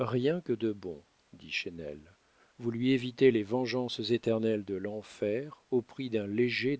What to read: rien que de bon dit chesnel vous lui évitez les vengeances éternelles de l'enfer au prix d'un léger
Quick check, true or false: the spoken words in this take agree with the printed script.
true